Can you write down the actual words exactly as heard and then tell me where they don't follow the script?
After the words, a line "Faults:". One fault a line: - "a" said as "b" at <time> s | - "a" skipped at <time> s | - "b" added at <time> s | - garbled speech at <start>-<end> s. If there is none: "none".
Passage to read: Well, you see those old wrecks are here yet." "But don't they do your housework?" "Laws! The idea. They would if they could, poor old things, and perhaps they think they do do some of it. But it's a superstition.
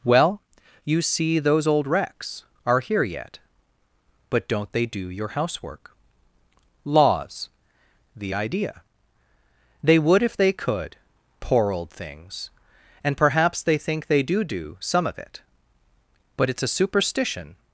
Well, you see those old wrecks are here yet." "But don't they do your housework?" "Laws! The idea. They would if they could, poor old things, and perhaps they think they do do some of it. But it's a superstition.
Faults:
none